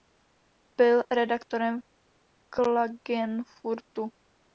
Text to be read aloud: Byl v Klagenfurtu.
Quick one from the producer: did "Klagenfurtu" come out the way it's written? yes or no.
yes